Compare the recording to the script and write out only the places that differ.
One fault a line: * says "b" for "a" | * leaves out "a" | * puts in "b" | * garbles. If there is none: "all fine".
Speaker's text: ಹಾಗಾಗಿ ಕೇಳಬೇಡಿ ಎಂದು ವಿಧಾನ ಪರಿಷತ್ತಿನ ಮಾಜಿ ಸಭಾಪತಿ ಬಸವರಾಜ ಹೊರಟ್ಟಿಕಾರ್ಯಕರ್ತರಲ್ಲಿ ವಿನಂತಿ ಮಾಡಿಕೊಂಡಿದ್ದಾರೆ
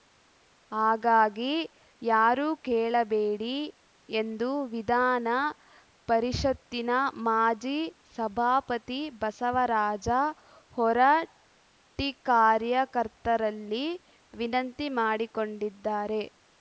* puts in "ಯಾರೂ"